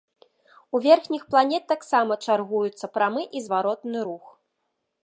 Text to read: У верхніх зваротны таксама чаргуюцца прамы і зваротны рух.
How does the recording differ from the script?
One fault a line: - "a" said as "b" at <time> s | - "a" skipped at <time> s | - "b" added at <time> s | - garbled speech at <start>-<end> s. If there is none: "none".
- "зваротны" said as "планет" at 1.4 s